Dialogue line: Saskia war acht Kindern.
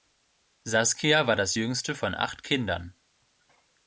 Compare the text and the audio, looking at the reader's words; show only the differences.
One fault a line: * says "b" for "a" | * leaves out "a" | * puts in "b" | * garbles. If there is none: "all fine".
* puts in "das jüngste von"